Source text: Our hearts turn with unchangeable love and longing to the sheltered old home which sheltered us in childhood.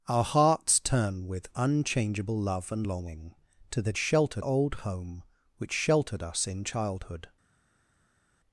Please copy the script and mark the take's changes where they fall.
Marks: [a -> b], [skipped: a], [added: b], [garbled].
Our hearts turn with unchangeable love and longing to the sheltered old home which sheltered us in childhood.